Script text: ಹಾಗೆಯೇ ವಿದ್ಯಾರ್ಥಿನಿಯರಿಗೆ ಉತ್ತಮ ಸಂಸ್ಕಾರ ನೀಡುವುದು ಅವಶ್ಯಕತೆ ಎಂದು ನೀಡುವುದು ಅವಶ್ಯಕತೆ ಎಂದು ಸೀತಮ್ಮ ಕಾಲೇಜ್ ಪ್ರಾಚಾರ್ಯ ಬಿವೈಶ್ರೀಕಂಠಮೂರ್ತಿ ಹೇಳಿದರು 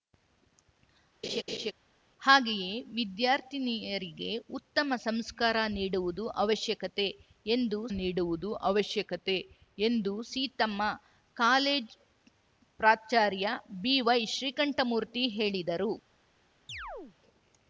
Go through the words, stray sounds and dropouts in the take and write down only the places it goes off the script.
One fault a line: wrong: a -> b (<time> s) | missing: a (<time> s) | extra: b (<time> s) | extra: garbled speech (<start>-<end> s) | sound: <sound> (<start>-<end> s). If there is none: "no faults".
sound: laugh (1.2-1.7 s)
sound: chirp (16.7-17.2 s)